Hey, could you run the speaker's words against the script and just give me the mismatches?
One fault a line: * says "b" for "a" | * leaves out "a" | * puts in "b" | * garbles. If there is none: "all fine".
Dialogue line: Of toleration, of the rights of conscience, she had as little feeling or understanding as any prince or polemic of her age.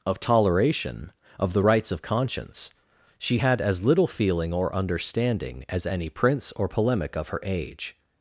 all fine